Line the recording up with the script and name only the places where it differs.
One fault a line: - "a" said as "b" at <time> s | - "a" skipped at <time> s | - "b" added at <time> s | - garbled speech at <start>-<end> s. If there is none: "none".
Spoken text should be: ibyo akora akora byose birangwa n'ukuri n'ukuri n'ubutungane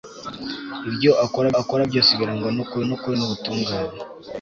none